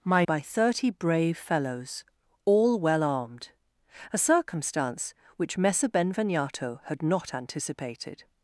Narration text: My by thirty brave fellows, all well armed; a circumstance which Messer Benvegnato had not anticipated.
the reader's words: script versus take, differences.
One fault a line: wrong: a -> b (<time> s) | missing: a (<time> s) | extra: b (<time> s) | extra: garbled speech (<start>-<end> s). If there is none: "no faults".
no faults